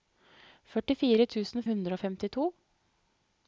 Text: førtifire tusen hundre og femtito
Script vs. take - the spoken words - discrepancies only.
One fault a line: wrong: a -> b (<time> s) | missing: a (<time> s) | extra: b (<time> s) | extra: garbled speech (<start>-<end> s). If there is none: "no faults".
no faults